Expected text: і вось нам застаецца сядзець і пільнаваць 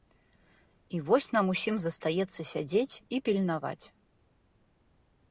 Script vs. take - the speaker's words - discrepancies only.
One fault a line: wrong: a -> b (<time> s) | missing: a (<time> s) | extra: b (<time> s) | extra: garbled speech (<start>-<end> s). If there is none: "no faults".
extra: усім (1.5 s)